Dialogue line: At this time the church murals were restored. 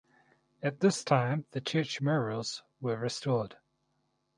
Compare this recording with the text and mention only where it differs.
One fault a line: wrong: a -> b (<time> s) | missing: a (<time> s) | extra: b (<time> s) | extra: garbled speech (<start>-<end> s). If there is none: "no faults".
no faults